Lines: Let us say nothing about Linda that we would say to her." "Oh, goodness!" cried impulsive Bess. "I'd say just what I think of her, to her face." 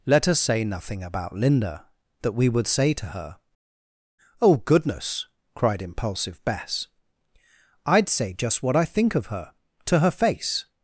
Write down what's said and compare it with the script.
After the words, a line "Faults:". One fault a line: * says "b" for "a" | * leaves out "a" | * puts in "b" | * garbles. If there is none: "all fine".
Let us say nothing about Linda that we would say to her." "Oh, goodness!" cried impulsive Bess. "I'd say just what I think of her, to her face."
Faults:
all fine